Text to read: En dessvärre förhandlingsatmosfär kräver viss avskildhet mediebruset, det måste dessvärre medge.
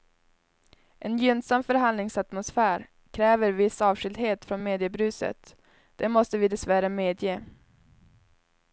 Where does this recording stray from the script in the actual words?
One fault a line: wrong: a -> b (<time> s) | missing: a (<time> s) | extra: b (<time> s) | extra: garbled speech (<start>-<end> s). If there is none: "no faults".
wrong: dessvärre -> gynnsam (1.2 s)
extra: från (4.5 s)
extra: vi (6.4 s)